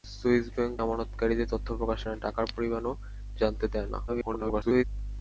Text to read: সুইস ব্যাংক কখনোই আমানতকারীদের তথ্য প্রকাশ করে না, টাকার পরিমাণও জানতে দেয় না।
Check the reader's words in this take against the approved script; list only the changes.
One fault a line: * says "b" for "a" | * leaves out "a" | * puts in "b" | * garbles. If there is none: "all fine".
* leaves out "কখনোই"
* leaves out "করে"
* garbles